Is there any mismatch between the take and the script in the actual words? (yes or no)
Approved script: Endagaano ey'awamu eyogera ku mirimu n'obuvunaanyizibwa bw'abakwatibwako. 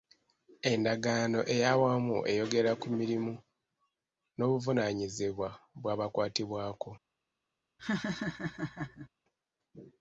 no